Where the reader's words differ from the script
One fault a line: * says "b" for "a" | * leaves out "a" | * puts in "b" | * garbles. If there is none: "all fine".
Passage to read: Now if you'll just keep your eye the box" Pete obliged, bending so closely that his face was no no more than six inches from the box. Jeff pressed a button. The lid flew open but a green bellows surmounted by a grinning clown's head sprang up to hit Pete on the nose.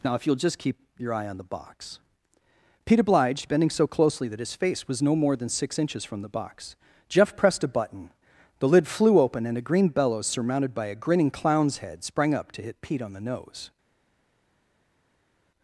* puts in "on"
* leaves out "no"
* says "and" for "but"